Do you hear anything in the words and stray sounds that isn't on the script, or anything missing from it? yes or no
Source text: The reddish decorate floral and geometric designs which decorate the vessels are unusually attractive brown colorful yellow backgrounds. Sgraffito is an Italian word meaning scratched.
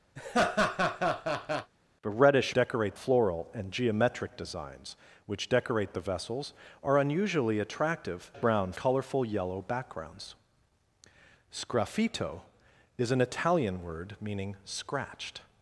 yes